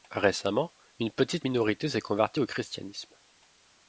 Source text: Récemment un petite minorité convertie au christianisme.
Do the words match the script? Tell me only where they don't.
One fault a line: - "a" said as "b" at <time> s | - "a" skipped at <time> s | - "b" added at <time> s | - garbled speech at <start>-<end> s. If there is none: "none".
- "un" said as "une" at 1.0 s
- "s'est" added at 1.9 s